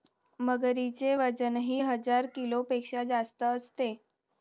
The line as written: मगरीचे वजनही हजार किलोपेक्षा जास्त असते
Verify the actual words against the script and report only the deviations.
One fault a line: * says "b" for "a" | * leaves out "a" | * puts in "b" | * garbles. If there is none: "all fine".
all fine